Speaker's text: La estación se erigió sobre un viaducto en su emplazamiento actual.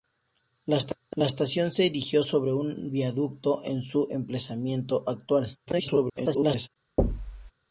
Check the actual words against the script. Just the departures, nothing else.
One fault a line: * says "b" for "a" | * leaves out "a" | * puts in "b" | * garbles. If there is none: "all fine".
* garbles